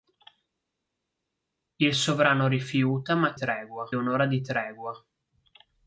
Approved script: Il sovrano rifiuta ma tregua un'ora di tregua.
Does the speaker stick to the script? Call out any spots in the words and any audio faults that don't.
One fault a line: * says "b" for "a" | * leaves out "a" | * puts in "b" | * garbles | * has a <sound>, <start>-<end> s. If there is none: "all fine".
all fine